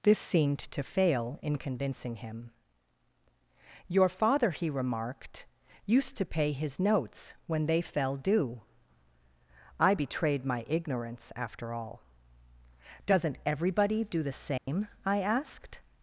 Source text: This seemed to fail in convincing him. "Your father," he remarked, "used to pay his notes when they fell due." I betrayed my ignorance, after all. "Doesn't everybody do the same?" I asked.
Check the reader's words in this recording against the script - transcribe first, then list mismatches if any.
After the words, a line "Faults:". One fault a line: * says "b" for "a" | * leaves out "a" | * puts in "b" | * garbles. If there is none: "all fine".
This seemed to fail in convincing him. "Your father," he remarked, "used to pay his notes when they fell due." I betrayed my ignorance, after all. "Doesn't everybody do the same?" I asked.
Faults:
all fine